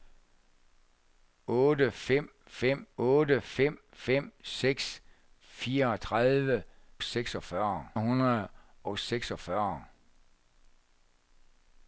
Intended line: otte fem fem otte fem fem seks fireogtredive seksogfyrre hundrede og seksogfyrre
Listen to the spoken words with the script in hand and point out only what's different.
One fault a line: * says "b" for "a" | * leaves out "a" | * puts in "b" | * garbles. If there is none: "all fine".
all fine